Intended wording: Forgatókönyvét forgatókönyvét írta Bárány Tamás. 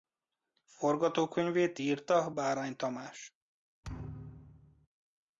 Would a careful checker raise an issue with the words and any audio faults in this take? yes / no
yes